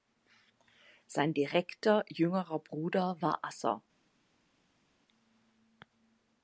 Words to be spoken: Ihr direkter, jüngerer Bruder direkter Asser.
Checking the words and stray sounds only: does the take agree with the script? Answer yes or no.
no